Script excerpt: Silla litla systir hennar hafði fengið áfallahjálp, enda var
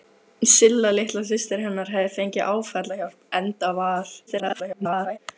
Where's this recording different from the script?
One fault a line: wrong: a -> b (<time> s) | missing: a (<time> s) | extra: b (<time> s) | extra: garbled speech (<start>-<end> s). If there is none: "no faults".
extra: garbled speech (4.3-5.2 s)